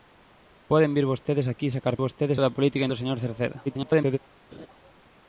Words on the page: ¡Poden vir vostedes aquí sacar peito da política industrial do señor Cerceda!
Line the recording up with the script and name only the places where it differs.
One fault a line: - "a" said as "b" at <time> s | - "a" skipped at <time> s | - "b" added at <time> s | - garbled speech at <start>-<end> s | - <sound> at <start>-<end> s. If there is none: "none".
- "peito" said as "vostedes" at 2.0 s
- "industrial" skipped at 2.9 s
- garbled speech at 3.6-4.2 s
- laugh at 4.5-4.7 s